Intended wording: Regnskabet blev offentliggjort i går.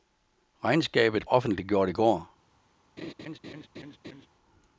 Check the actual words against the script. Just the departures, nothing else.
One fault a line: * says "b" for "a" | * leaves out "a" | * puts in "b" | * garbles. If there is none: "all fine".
* leaves out "blev"